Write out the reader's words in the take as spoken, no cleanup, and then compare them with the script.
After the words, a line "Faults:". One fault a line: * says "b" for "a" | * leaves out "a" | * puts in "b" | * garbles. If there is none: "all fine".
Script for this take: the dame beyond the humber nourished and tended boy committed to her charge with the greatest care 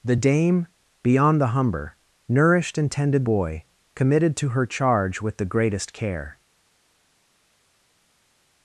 the dame beyond the humber nourished and tended boy committed to her charge with the greatest care
Faults:
all fine